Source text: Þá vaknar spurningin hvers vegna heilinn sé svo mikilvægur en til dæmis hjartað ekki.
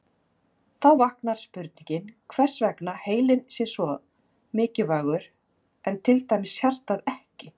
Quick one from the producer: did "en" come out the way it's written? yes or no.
yes